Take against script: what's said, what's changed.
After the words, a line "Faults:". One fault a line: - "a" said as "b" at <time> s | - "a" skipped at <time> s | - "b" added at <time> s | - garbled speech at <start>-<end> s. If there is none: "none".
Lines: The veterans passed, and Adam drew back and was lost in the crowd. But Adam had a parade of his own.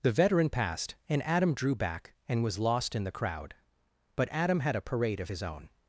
The veteran passed, and Adam drew back and was lost in the crowd. But Adam had a parade of his own.
Faults:
- "veterans" said as "veteran" at 0.1 s